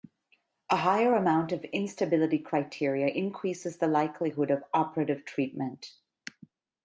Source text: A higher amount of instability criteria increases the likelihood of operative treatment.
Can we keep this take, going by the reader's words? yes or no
yes